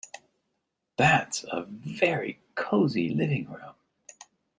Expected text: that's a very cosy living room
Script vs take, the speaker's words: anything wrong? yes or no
no